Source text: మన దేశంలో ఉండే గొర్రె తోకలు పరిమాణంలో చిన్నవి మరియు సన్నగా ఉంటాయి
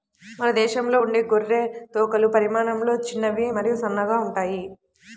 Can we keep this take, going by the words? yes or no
yes